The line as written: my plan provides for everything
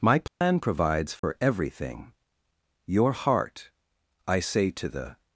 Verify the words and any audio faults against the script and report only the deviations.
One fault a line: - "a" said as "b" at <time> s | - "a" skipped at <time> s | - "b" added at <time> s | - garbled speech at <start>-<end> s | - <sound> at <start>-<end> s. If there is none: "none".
- dropout at 0.3-0.4 s
- dropout at 1.2-1.2 s
- "your heart i say to the" added at 2.9 s